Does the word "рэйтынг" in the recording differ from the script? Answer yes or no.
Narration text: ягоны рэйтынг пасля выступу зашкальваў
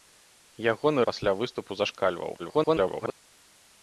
yes